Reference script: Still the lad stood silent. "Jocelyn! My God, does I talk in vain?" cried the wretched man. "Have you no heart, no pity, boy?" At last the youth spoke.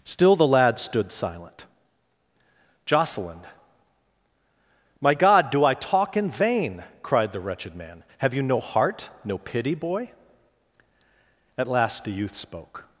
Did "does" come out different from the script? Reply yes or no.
yes